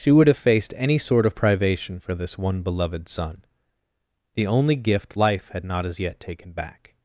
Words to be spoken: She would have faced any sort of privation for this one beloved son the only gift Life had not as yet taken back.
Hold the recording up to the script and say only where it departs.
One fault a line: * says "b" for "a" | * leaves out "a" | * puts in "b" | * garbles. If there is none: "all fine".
all fine